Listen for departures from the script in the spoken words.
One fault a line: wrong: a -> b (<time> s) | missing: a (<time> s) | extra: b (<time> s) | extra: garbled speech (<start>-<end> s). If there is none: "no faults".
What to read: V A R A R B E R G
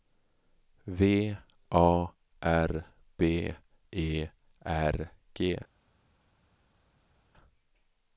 missing: A R (2.9 s)